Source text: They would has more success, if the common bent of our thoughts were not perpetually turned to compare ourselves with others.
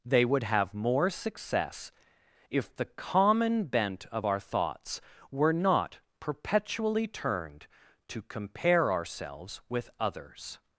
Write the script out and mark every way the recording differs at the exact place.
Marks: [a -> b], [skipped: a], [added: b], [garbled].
They would [has -> have] more success, if the common bent of our thoughts were not perpetually turned to compare ourselves with others.